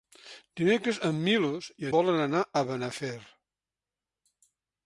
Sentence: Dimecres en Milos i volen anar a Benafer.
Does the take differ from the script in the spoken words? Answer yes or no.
no